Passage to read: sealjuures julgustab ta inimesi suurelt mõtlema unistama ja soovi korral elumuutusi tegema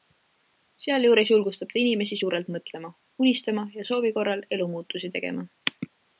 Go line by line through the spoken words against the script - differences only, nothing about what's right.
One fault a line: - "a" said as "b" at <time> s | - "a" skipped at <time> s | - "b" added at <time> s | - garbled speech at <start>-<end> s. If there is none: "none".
none